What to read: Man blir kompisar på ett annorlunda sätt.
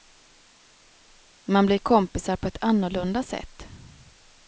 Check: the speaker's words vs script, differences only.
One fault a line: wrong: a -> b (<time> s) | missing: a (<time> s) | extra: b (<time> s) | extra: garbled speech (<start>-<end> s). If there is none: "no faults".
no faults